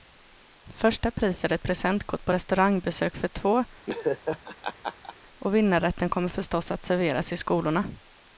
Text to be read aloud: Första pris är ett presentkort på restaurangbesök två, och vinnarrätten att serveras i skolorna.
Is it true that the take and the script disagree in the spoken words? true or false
true